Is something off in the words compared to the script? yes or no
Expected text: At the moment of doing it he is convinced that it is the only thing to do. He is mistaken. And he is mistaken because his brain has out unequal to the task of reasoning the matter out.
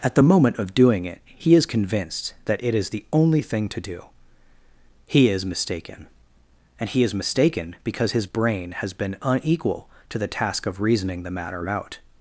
yes